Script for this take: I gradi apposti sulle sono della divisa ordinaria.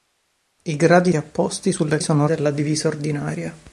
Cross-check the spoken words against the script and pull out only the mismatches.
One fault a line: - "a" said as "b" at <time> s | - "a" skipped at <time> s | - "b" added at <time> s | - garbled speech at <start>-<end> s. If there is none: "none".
none